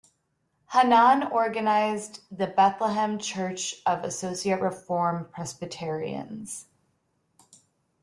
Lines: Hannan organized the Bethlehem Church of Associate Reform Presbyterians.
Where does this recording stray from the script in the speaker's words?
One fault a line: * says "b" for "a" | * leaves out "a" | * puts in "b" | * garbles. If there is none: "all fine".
all fine